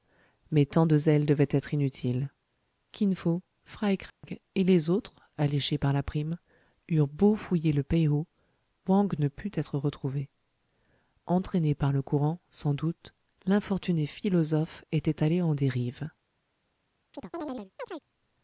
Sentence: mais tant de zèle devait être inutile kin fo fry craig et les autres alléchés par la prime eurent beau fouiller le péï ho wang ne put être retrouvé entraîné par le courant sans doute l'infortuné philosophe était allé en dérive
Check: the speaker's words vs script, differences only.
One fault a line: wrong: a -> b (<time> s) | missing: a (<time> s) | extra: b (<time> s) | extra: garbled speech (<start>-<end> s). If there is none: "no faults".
no faults